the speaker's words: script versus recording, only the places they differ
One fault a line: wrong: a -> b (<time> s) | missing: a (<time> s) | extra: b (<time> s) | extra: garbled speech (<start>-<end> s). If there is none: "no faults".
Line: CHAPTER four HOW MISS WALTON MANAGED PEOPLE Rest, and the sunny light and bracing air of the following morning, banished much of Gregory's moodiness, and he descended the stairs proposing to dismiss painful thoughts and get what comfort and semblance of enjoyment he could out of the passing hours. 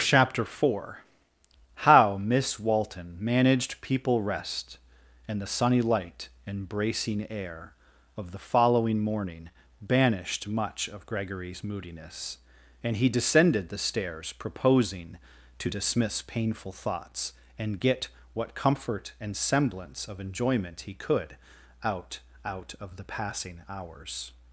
extra: out (22.4 s)